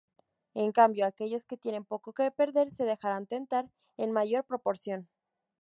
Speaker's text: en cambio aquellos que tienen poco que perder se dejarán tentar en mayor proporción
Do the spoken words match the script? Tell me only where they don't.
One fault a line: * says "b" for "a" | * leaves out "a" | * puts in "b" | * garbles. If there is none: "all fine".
all fine